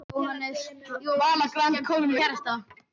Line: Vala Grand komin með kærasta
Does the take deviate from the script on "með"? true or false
true